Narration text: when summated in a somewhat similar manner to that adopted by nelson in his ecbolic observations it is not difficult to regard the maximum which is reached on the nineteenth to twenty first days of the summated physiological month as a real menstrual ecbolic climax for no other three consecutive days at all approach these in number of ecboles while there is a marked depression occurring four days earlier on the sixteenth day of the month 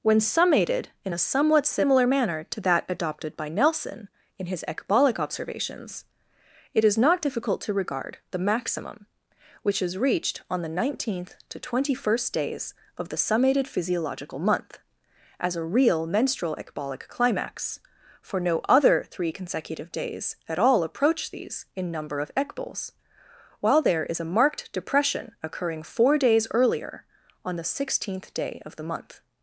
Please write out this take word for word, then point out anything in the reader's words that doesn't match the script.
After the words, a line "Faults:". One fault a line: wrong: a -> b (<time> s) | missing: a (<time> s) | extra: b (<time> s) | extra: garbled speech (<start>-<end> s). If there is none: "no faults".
when summated in a somewhat similar manner to that adopted by nelson in his ecbolic observations it is not difficult to regard the maximum which is reached on the nineteenth to twenty first days of the summated physiological month as a real menstrual ecbolic climax for no other three consecutive days at all approach these in number of ecboles while there is a marked depression occurring four days earlier on the sixteenth day of the month
Faults:
no faults